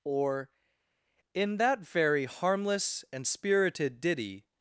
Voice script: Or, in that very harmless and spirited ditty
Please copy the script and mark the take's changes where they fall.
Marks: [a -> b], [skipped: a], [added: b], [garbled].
Or, in that very harmless and spirited ditty